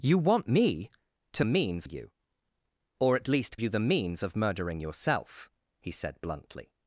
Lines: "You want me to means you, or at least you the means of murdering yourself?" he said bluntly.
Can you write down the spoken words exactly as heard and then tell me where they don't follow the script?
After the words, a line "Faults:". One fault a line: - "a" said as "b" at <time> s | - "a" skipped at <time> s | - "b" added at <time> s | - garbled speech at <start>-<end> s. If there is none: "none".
"You want me to means you, or at least you the means of murdering yourself?" he said bluntly.
Faults:
none